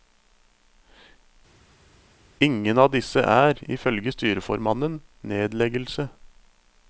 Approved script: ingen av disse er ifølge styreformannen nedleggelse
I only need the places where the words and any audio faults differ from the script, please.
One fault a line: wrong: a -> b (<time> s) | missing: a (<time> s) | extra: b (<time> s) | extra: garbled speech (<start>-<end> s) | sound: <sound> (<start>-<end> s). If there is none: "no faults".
no faults